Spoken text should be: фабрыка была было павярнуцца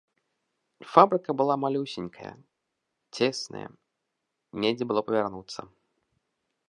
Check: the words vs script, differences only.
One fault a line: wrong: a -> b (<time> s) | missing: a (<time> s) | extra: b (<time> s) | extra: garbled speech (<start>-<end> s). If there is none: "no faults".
extra: малюсенькая цесная недзе (1.6 s)